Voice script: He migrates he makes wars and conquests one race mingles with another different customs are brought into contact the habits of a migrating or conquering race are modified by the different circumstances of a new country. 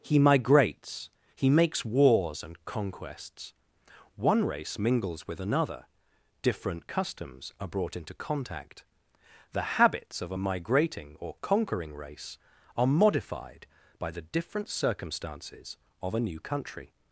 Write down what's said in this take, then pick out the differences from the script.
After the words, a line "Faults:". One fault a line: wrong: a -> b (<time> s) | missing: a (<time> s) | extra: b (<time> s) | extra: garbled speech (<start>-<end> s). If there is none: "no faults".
He migrates he makes wars and conquests one race mingles with another different customs are brought into contact the habits of a migrating or conquering race are modified by the different circumstances of a new country.
Faults:
no faults